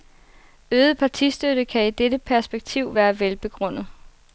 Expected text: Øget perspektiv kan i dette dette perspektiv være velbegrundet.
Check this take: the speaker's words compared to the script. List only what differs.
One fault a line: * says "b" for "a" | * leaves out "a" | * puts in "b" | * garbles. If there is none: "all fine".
* says "partistøtte" for "perspektiv"
* leaves out "dette"